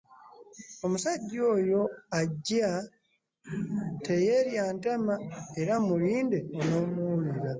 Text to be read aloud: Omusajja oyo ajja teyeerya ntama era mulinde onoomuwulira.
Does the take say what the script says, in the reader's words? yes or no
yes